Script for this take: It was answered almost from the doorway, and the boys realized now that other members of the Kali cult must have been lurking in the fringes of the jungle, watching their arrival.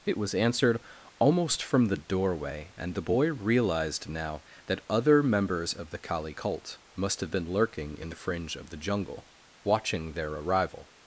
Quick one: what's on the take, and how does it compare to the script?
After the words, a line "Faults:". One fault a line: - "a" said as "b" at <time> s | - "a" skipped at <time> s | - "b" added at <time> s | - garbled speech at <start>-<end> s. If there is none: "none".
It was answered almost from the doorway, and the boy realized now that other members of the Kali cult must have been lurking in the fringe of the jungle, watching their arrival.
Faults:
- "boys" said as "boy" at 3.0 s
- "fringes" said as "fringe" at 8.2 s